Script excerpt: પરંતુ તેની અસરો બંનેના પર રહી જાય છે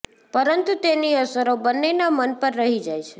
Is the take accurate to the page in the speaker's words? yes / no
no